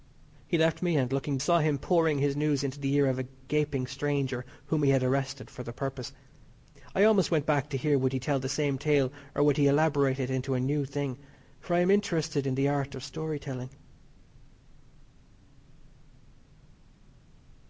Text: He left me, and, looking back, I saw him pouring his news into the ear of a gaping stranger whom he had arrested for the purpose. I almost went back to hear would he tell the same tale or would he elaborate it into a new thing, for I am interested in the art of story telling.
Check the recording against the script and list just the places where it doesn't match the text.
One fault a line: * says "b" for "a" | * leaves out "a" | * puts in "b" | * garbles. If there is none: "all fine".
* leaves out "back I"